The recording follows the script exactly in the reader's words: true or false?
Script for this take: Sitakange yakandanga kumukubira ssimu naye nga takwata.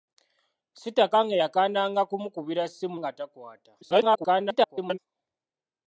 false